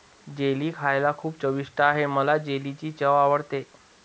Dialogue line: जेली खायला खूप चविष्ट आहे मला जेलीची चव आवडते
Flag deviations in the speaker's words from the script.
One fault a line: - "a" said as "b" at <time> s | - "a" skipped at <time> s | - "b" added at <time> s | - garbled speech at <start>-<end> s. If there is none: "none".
none